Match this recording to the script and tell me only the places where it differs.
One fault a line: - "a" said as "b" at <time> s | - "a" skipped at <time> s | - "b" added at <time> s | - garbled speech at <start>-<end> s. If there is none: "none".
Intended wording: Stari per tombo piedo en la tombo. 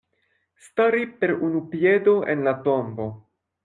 - "tombo" said as "unu" at 1.5 s